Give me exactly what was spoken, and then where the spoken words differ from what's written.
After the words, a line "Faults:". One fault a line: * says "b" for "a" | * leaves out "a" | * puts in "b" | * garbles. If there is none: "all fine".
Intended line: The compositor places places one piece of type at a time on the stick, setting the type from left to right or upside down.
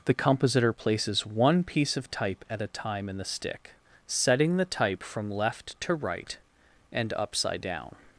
The compositor places one piece of type at a time in the stick, setting the type from left to right and upside down.
Faults:
* leaves out "places"
* says "in" for "on"
* says "and" for "or"